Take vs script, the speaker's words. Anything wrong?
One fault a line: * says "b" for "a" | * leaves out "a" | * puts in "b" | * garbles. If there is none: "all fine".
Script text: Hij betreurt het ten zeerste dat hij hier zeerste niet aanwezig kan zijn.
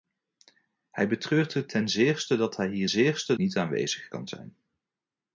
all fine